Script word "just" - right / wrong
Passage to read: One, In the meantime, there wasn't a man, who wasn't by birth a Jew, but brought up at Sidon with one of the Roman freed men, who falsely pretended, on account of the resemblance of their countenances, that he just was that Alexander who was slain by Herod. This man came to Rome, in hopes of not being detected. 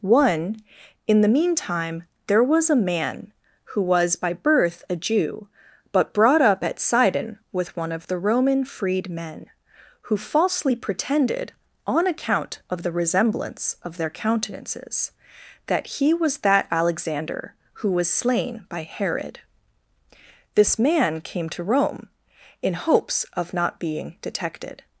wrong